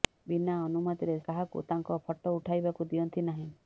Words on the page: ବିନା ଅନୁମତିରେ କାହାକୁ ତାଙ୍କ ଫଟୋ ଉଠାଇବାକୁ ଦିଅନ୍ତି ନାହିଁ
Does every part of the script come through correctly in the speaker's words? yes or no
yes